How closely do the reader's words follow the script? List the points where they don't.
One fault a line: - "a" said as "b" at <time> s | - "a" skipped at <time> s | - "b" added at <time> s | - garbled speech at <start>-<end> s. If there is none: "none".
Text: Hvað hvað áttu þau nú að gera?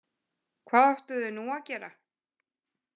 - "hvað" skipped at 0.9 s